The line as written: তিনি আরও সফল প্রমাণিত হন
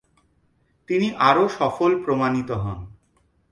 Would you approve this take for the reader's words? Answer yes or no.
yes